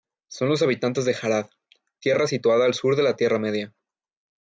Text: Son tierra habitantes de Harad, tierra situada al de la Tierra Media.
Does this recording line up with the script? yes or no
no